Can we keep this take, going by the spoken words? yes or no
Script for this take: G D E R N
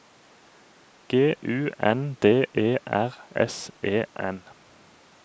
no